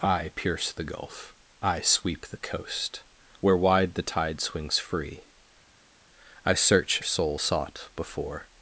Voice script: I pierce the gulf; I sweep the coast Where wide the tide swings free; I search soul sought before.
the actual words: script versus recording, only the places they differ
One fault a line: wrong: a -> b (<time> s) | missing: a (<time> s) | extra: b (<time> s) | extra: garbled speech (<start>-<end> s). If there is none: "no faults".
no faults